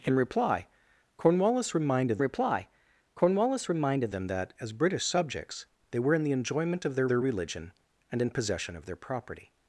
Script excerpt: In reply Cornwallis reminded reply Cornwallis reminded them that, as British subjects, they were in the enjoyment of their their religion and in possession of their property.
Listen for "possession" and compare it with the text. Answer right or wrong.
right